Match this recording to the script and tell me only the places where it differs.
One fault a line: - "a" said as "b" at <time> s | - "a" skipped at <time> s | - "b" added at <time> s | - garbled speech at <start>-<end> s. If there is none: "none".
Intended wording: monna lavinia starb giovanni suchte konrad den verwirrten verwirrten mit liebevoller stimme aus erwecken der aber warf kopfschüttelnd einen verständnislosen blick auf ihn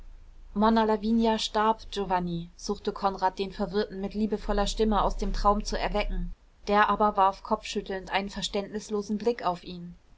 - "verwirrten" skipped at 4.0 s
- "dem traum zu" added at 5.2 s